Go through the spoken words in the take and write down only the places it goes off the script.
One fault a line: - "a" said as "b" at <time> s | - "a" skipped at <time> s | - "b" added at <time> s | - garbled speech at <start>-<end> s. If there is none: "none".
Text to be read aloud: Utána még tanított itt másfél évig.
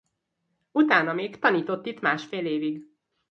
none